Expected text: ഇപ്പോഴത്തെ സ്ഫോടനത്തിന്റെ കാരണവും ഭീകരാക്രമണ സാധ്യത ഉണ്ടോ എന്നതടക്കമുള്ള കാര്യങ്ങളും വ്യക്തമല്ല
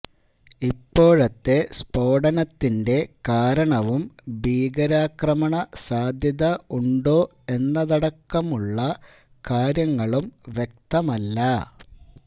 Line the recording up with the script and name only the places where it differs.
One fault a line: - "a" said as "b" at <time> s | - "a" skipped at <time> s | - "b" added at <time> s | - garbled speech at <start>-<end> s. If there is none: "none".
none